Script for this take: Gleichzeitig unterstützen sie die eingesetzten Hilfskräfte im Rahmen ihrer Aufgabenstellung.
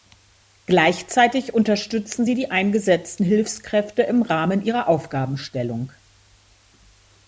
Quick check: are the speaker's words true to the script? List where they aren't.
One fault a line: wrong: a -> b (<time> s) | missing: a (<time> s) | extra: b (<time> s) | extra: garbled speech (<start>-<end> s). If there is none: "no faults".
no faults